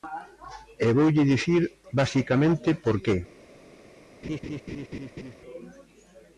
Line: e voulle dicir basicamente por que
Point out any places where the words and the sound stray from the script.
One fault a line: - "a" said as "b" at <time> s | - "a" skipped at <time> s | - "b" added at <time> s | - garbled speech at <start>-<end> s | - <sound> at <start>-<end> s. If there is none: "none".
- laugh at 4.2-5.3 s